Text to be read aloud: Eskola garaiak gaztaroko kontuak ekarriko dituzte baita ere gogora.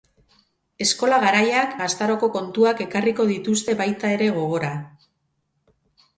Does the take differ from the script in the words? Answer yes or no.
no